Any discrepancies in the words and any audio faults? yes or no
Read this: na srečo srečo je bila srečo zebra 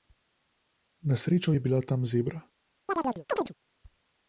yes